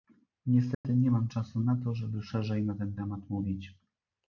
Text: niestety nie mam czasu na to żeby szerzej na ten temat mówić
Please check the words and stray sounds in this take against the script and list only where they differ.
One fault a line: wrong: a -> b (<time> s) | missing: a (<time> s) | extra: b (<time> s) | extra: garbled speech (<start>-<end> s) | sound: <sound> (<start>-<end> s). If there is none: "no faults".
sound: dropout (0.7-0.8 s)